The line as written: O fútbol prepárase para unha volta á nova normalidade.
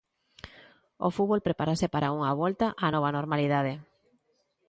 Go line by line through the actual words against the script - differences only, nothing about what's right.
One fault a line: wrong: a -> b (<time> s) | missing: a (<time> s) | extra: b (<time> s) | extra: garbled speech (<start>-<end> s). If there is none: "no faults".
no faults